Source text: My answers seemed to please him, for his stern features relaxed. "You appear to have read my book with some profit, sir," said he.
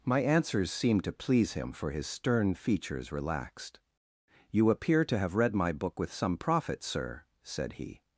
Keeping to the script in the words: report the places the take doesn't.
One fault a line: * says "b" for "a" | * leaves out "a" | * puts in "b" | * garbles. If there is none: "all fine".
all fine